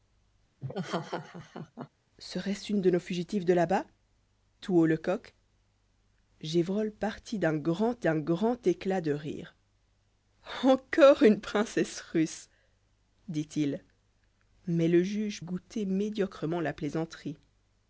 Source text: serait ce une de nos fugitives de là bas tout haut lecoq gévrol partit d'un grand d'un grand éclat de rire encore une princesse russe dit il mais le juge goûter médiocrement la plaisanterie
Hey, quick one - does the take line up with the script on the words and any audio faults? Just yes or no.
no